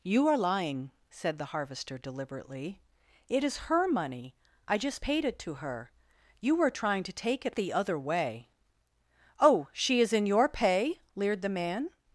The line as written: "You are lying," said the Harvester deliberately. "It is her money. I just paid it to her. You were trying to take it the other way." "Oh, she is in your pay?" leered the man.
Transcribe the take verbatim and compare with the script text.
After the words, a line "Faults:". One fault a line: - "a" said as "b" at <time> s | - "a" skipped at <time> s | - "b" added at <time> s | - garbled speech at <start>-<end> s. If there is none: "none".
"You are lying," said the Harvester deliberately. "It is her money. I just paid it to her. You were trying to take it the other way." "Oh, she is in your pay?" leered the man.
Faults:
none